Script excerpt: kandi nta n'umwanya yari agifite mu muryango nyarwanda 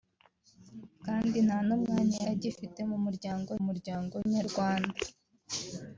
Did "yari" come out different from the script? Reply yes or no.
yes